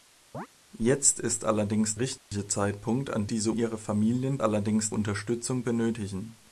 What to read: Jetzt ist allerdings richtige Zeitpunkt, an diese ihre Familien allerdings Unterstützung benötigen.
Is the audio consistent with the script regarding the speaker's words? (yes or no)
yes